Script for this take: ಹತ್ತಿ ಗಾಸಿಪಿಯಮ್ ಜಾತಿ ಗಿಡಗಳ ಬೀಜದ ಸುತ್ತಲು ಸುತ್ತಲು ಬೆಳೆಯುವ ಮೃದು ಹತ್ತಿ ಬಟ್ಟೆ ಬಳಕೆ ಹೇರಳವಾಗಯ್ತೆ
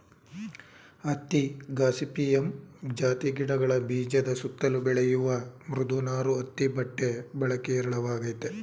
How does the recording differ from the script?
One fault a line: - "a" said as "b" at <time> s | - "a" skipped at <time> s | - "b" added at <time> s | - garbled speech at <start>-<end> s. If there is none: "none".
- "ಸುತ್ತಲು" skipped at 4.8 s
- "ನಾರು" added at 6.0 s